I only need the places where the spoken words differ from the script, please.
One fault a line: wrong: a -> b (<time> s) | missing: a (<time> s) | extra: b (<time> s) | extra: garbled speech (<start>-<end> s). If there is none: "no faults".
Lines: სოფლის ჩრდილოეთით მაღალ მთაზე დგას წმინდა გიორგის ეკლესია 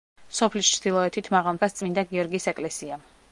missing: მთაზე (1.6 s)